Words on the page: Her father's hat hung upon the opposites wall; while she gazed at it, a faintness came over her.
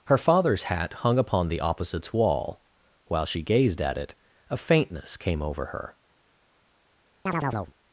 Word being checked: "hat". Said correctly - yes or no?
yes